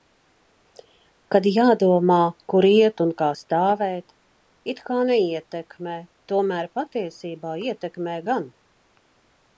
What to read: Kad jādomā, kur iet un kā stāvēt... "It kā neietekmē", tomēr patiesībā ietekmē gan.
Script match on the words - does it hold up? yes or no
yes